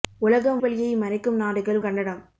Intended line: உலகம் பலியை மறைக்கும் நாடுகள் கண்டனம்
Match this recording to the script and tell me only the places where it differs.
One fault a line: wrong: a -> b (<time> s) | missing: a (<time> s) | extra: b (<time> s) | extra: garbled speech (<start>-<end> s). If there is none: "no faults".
no faults